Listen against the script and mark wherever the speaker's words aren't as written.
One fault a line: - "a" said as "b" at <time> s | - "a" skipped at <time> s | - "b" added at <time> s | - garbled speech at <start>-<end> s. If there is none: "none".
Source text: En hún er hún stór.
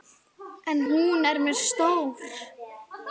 - "hún" said as "mér" at 1.4 s